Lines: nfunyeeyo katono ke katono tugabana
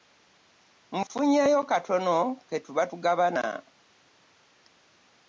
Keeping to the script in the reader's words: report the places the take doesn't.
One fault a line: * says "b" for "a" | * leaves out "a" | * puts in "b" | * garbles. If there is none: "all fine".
* says "tuba" for "katono"